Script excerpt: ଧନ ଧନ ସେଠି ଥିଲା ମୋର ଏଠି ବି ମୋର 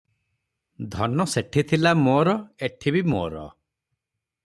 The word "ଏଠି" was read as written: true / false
true